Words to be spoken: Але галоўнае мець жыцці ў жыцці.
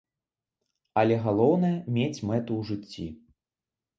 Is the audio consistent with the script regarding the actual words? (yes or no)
no